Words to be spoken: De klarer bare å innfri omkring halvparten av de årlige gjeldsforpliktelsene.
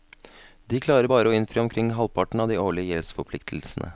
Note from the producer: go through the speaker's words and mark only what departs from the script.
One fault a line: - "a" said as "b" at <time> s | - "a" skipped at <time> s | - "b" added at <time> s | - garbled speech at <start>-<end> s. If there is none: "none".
none